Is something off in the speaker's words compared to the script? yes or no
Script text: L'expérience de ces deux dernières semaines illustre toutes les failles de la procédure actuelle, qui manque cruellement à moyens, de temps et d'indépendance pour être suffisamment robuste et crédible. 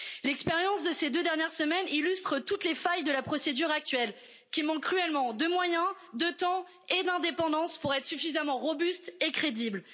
yes